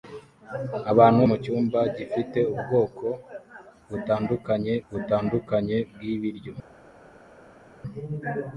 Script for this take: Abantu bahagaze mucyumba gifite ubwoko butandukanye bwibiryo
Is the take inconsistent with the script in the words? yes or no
yes